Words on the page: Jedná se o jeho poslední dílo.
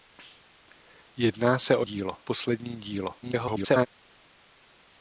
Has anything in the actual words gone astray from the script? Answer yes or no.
yes